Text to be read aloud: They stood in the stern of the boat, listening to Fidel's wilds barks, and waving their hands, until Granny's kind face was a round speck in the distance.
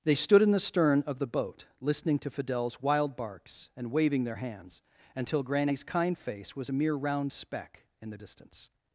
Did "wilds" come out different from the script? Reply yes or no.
yes